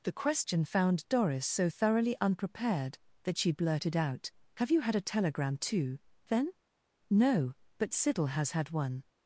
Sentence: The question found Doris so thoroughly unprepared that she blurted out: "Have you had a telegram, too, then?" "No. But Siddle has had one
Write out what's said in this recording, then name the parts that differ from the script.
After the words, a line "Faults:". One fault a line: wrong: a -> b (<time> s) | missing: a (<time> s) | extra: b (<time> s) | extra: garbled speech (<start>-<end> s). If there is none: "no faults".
The question found Doris so thoroughly unprepared that she blurted out: "Have you had a telegram, too, then?" "No. But Siddle has had one
Faults:
no faults